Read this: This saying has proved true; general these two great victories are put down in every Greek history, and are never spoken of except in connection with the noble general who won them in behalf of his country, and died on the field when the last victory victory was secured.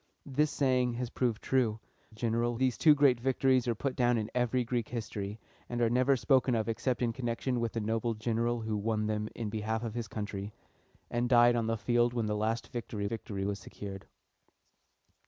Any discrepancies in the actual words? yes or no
no